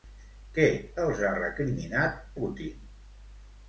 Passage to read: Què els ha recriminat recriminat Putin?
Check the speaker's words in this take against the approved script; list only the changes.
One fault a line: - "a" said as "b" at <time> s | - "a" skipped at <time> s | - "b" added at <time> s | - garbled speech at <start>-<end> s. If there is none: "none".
- "recriminat" skipped at 2.2 s